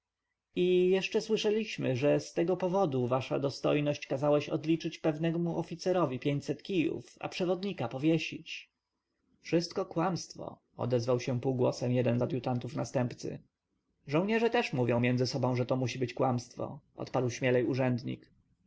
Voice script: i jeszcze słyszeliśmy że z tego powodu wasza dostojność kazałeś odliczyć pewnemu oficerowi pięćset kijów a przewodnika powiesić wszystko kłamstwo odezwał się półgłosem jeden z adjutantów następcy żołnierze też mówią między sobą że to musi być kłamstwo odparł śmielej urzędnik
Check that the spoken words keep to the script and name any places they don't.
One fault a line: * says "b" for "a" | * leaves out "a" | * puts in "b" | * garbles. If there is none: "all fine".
all fine